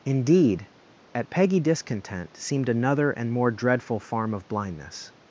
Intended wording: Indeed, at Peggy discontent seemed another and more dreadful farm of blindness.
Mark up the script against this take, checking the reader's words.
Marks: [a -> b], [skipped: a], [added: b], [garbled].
Indeed, at Peggy discontent seemed another and more dreadful farm of blindness.